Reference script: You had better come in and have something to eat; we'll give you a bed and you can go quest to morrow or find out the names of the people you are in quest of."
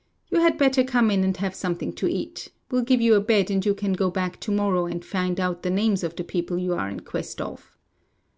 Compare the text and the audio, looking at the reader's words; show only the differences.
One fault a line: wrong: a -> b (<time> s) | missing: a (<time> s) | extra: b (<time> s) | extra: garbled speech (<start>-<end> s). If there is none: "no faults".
wrong: quest -> back (4.1 s)
wrong: or -> and (4.9 s)